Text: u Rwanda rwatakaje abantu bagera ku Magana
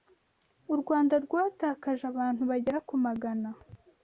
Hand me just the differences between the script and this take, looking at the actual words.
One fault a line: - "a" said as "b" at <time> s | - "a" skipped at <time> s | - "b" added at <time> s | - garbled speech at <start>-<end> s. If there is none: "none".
none